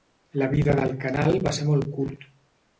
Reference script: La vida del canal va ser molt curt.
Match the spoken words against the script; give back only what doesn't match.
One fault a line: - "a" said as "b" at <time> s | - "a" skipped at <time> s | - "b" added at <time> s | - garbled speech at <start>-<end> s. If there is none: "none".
none